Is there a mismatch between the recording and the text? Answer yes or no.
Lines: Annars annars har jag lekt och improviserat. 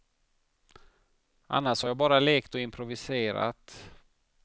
yes